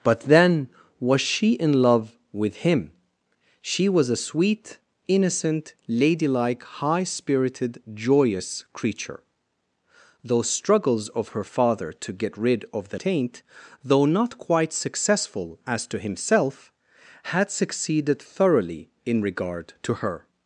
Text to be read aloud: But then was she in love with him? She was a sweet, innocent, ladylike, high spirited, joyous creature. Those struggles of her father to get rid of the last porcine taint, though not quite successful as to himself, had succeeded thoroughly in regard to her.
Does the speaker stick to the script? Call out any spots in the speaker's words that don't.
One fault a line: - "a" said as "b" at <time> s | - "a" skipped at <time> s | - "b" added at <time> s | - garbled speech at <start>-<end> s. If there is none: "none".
- "last porcine" skipped at 13.0 s